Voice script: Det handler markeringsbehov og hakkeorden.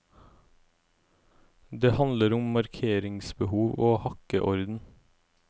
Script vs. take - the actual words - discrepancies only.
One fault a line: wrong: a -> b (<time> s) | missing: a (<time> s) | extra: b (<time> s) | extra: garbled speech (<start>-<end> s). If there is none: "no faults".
extra: om (2.3 s)